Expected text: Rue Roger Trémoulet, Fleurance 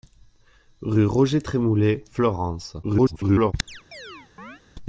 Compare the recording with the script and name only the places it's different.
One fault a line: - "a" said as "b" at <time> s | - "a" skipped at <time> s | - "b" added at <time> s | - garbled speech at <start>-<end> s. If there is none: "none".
- garbled speech at 2.8-3.5 s